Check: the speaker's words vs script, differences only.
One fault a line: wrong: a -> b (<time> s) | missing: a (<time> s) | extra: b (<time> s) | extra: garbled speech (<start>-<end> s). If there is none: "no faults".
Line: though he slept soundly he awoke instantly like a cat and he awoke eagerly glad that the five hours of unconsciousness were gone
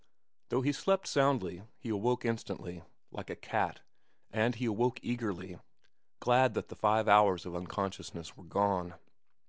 no faults